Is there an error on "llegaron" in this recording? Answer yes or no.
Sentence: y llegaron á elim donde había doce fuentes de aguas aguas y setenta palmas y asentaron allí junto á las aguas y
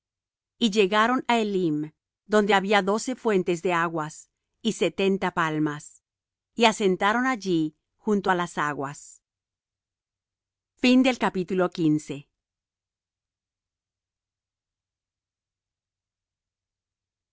no